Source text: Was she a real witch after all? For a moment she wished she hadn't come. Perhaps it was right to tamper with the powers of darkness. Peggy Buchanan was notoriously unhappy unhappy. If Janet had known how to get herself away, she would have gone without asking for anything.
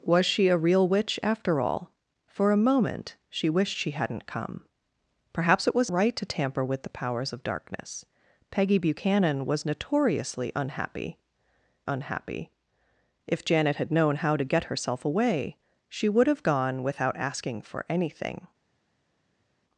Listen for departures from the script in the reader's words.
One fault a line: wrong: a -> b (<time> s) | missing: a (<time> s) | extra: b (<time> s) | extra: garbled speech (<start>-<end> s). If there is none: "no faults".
no faults